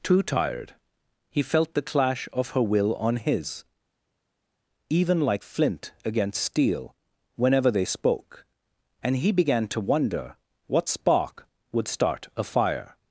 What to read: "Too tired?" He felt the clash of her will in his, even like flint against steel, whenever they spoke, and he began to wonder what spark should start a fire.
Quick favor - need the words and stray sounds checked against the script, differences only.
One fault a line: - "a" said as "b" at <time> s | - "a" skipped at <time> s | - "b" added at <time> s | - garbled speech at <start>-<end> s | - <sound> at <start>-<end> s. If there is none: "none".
- "in" said as "on" at 3.0 s
- "should" said as "would" at 11.7 s